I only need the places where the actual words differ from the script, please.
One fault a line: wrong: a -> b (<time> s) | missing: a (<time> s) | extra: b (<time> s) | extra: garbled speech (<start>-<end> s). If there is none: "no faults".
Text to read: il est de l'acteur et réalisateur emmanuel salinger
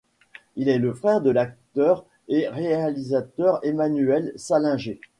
extra: le frère (0.8 s)